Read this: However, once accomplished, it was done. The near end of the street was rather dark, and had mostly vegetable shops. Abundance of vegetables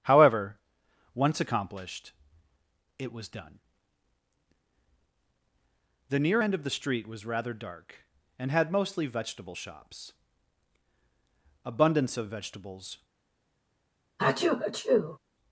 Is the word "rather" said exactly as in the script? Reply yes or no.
yes